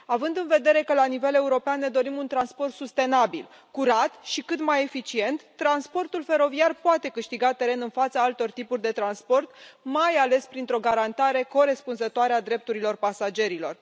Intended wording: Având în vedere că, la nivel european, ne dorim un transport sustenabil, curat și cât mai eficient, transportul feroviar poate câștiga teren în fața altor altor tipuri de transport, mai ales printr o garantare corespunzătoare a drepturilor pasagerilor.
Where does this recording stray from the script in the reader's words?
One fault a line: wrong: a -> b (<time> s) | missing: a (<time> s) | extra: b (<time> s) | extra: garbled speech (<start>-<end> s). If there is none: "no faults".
missing: altor (8.5 s)